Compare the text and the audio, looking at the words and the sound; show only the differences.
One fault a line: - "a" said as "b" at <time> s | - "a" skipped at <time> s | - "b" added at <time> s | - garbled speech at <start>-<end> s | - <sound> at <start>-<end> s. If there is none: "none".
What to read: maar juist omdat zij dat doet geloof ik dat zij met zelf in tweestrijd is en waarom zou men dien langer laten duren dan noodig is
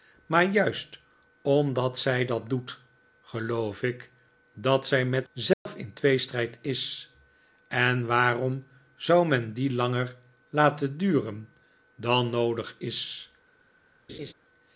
- dropout at 5.5-5.7 s
- laugh at 14.1-14.3 s